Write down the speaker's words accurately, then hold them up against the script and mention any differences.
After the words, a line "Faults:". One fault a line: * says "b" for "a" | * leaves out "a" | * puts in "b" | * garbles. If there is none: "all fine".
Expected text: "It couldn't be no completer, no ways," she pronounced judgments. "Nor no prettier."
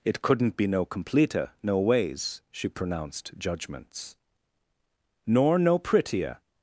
"It couldn't be no completer, no ways," she pronounced judgments. "Nor no prettier."
Faults:
all fine